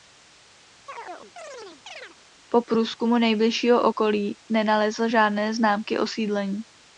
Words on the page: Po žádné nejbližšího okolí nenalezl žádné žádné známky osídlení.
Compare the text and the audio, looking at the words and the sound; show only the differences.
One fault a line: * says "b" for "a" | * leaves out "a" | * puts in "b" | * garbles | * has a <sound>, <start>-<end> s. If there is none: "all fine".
* has a chirp, 0.9-2.2 s
* says "průzkumu" for "žádné"
* leaves out "žádné"